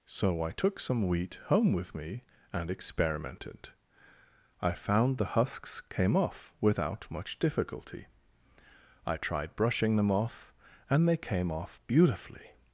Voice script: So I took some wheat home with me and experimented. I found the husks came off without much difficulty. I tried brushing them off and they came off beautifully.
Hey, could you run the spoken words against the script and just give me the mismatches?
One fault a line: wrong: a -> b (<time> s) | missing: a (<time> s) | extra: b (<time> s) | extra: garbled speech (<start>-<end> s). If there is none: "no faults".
no faults